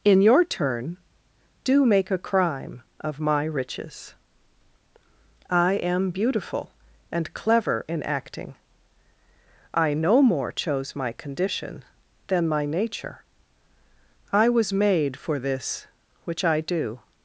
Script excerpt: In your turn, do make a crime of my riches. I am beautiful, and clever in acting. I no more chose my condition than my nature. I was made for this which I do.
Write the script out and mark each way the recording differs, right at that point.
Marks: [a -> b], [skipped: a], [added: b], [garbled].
In your turn, do make a crime of my riches. I am beautiful, and clever in acting. I no more chose my condition than my nature. I was made for this which I do.